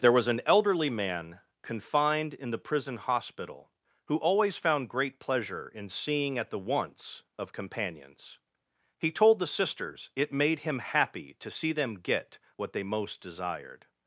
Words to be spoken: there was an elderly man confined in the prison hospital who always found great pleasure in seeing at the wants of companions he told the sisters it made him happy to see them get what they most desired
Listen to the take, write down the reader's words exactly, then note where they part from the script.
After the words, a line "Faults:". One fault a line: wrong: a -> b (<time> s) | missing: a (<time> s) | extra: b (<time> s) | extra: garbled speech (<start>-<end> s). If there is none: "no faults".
there was an elderly man confined in the prison hospital who always found great pleasure in seeing at the wants of companions he told the sisters it made him happy to see them get what they most desired
Faults:
no faults